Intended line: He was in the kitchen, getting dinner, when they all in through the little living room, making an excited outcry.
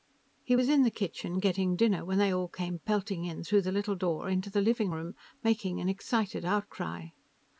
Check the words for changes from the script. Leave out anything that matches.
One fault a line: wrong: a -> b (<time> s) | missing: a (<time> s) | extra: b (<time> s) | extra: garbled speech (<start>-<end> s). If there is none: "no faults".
extra: came pelting (2.5 s)
extra: door into the (4.0 s)